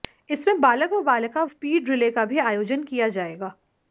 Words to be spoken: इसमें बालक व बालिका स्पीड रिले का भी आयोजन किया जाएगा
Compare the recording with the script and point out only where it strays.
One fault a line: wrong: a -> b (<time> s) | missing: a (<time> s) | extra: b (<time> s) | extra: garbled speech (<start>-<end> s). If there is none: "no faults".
no faults